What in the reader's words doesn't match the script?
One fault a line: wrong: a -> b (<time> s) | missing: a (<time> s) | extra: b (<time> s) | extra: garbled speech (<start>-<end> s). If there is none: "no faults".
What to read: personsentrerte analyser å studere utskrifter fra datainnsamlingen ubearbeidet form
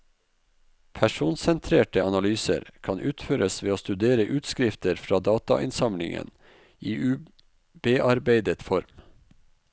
extra: kan utføres ved (2.8 s)
extra: i (6.8 s)